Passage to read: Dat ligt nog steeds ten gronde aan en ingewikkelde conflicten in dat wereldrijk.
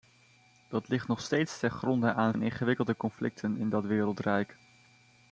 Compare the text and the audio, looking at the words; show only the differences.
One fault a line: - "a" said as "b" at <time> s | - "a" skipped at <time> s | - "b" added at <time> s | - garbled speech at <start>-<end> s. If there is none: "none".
none